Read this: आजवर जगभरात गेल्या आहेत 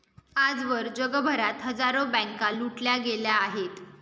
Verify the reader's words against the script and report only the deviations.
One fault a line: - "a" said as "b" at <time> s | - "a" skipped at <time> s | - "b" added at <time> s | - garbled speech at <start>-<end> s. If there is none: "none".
- "हजारो बँका लुटल्या" added at 1.6 s